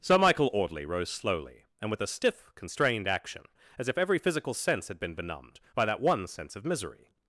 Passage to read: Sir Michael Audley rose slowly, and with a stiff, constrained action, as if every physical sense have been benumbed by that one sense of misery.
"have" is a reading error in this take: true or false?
true